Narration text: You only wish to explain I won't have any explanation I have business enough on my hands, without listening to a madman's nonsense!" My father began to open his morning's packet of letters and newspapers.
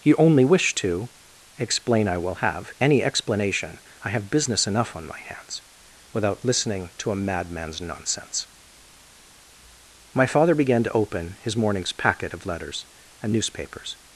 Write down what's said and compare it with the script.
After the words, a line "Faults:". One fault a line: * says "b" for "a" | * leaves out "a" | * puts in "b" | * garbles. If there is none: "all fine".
You only wish to explain I will have any explanation I have business enough on my hands, without listening to a madman's nonsense!" My father began to open his morning's packet of letters and newspapers.
Faults:
* says "will" for "won't"